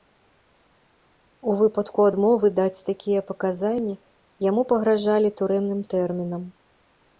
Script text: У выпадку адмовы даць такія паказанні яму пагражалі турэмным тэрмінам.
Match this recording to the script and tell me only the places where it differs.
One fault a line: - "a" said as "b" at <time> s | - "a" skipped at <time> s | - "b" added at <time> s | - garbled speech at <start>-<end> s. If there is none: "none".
none